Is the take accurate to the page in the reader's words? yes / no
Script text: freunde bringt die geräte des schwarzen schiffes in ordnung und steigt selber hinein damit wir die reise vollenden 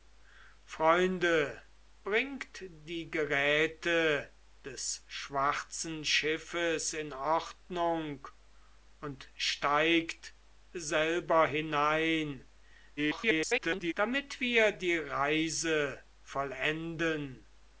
no